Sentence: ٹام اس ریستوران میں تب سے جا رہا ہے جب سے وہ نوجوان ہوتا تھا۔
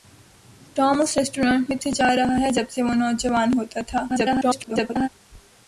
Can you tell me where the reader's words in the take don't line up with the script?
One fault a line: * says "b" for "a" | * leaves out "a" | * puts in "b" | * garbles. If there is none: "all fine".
* leaves out "تب"
* garbles